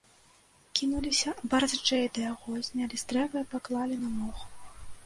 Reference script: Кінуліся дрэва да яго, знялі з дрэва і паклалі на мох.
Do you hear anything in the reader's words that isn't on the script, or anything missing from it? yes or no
yes